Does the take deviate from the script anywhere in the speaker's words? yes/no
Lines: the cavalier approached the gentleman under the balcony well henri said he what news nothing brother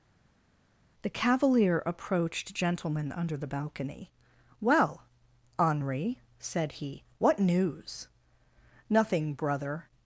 yes